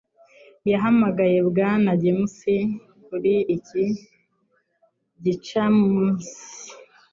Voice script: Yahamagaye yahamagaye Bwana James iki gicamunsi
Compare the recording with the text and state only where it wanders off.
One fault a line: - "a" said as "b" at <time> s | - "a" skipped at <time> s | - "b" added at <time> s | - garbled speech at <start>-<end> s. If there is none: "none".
- "yahamagaye" skipped at 1.4 s
- "kuri" added at 3.1 s